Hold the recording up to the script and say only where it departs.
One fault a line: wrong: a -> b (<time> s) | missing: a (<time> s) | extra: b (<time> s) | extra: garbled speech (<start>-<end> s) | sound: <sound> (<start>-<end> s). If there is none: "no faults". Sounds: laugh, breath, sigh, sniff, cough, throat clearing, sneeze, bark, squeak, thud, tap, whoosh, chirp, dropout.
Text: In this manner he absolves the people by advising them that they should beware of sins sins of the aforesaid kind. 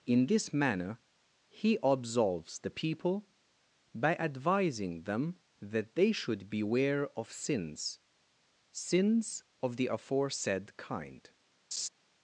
sound: laugh (11.7-11.9 s)